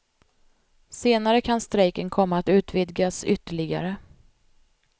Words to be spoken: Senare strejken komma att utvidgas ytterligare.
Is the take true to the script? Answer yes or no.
no